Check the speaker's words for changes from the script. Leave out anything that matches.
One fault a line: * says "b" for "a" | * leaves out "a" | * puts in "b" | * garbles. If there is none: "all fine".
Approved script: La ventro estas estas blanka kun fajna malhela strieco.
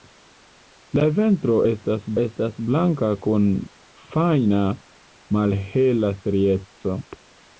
all fine